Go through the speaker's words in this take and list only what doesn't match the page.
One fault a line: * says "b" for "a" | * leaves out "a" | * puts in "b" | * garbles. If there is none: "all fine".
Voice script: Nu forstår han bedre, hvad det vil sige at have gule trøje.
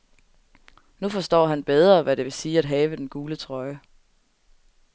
* puts in "den"